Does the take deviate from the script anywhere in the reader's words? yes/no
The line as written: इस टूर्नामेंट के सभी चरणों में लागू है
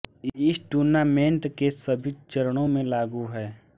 no